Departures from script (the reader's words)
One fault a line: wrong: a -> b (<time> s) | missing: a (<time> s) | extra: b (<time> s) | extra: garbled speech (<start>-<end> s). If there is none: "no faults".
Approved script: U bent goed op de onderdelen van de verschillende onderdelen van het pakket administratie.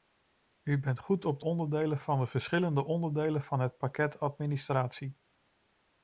no faults